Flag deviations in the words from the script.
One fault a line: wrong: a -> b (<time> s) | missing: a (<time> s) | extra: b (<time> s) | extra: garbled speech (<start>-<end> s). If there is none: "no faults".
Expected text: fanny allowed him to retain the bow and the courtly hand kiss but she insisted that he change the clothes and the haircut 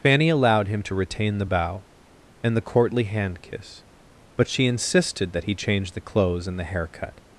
no faults